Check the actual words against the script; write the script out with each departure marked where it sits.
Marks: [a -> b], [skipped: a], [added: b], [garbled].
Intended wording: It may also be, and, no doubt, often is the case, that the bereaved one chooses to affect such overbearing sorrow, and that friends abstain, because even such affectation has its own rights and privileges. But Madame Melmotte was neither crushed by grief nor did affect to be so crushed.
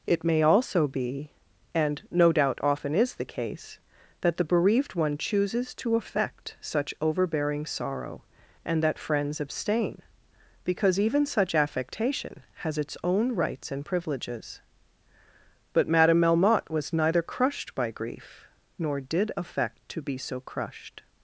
It may also be, and, no doubt, often is the case, that the bereaved one chooses to affect such overbearing sorrow, and that friends abstain, because even such affectation has its own rights and privileges. But Madame Melmotte was neither crushed by grief nor did affect to be so crushed.